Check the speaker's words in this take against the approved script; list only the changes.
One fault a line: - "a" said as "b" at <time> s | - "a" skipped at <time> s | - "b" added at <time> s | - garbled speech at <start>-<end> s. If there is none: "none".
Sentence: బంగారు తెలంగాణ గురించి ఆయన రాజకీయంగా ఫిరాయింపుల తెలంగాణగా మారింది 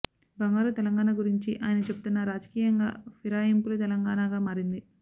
- "చెబుతున్నా" added at 1.9 s